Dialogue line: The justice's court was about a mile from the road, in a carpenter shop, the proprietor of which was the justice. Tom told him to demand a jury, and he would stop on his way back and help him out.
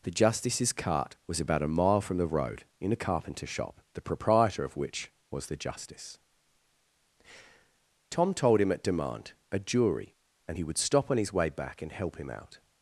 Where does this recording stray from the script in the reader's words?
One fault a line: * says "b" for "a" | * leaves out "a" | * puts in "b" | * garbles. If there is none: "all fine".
* says "cart" for "court"
* says "at" for "to"